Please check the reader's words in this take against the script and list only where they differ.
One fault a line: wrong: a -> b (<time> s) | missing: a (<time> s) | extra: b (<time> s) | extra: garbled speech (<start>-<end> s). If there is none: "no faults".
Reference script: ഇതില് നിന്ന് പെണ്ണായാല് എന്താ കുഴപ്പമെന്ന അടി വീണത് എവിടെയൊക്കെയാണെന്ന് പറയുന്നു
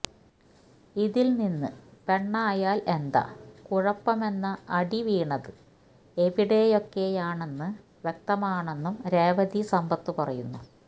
extra: വ്യക്തമാണെന്നും രേവതി സമ്പത്ത് (8.0 s)